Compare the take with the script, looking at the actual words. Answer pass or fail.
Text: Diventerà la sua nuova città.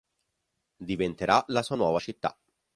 pass